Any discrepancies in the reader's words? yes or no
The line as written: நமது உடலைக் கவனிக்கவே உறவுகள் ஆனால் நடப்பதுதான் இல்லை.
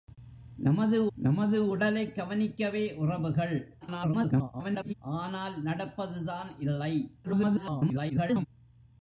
yes